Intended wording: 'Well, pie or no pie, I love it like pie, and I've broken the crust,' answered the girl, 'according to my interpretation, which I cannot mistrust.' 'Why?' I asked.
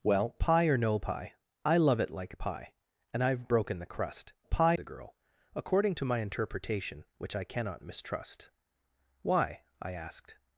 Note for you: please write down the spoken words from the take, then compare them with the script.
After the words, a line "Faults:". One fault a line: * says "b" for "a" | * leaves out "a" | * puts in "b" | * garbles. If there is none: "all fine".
'Well, pie or no pie, I love it like pie, and I've broken the crust,' pie the girl, 'according to my interpretation, which I cannot mistrust.' 'Why?' I asked.
Faults:
* says "pie" for "answered"